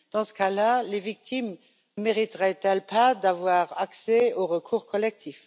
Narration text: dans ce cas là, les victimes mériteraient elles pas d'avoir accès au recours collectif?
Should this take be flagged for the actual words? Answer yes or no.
no